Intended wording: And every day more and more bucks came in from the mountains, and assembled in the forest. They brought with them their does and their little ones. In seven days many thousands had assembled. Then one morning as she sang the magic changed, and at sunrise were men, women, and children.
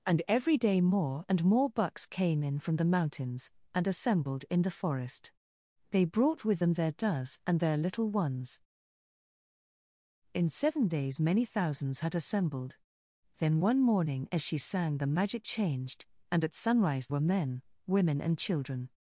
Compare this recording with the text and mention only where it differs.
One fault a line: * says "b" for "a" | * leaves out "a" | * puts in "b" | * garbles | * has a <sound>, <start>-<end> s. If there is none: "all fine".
all fine